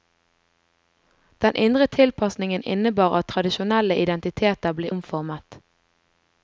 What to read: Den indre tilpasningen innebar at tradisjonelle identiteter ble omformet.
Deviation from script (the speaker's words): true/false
false